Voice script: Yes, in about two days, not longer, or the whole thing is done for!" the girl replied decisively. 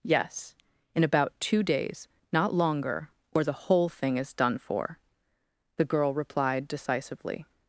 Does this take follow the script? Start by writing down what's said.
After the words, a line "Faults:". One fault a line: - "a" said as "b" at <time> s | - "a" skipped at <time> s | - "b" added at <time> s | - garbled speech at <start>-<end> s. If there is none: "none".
Yes, in about two days, not longer, or the whole thing is done for!" the girl replied decisively.
Faults:
none